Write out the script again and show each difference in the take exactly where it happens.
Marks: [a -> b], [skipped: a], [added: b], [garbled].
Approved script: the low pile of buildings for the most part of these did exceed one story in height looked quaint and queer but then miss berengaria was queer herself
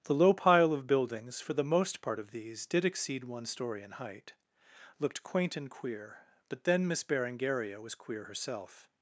the low pile of buildings for the most part of these did exceed one story in height looked quaint and queer but then miss berengaria was queer herself